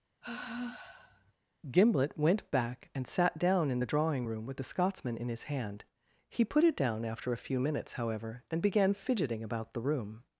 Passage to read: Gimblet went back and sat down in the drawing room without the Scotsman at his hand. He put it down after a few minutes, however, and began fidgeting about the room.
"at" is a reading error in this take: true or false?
true